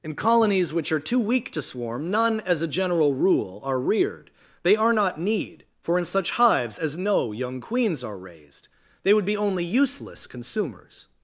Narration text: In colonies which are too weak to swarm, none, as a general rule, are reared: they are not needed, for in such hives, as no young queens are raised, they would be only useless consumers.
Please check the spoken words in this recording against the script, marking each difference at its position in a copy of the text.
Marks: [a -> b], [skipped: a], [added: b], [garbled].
In colonies which are too weak to swarm, none, as a general rule, are reared: they are not [needed, -> need] for in such hives, as no young queens are raised, they would be only useless consumers.